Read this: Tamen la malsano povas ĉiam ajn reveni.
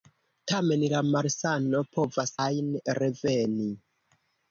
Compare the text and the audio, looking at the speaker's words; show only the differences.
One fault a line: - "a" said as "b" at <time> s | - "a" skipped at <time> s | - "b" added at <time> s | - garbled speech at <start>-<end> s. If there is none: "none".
- "ĉiam" skipped at 2.3 s